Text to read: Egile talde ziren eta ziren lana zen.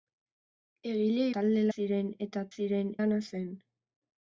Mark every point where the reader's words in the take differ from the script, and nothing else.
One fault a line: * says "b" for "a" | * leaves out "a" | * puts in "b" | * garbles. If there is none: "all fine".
all fine